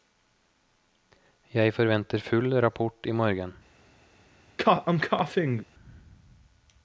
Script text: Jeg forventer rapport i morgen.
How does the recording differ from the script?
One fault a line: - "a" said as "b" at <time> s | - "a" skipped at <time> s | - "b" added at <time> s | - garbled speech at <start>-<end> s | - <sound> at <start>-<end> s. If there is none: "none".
- "full" added at 2.2 s
- cough at 4.6-5.6 s